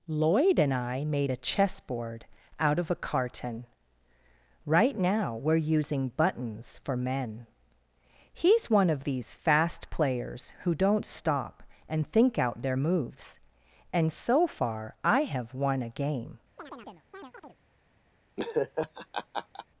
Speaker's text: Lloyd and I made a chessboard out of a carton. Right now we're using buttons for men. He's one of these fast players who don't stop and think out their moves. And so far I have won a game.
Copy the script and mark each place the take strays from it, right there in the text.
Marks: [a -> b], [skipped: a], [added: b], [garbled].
Lloyd and I made a chessboard out of a carton. Right now we're using buttons for men. He's one of these fast players who don't stop and think out their moves. And so far I have won a game.